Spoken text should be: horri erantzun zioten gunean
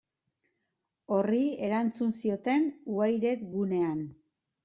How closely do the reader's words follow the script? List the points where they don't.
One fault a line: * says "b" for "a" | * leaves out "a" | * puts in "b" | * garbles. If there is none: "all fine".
* puts in "wired"